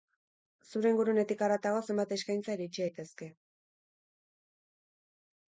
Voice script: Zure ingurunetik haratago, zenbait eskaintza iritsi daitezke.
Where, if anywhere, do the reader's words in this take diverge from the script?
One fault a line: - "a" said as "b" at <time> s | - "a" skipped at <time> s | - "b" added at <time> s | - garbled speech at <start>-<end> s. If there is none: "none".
none